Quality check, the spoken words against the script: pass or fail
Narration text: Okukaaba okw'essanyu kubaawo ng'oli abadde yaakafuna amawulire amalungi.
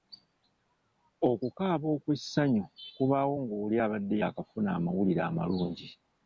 pass